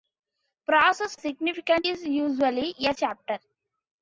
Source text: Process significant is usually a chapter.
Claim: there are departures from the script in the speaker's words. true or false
false